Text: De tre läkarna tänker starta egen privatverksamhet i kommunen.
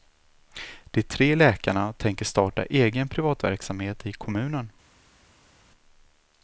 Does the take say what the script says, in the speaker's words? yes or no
yes